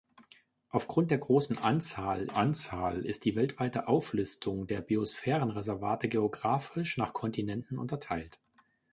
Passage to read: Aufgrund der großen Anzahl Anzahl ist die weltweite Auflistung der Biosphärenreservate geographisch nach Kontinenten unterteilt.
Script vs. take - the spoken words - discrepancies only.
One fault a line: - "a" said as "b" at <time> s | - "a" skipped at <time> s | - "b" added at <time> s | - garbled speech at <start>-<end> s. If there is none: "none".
none